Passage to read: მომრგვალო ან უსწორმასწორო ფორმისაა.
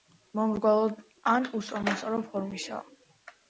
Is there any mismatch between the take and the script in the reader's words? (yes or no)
no